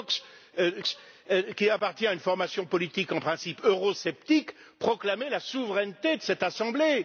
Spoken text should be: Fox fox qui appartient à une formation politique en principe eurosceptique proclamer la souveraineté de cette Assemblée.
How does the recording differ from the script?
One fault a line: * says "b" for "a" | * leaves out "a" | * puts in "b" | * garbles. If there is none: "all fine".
all fine